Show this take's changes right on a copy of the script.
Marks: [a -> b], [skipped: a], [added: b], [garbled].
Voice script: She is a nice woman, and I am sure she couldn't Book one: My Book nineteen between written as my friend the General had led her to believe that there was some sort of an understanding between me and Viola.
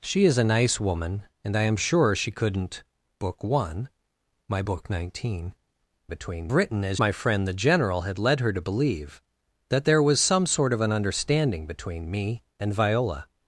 She is a nice woman, and I am sure she couldn't Book one: My Book nineteen between written as my friend the General had led her to believe that there was some sort of an understanding between me and Viola.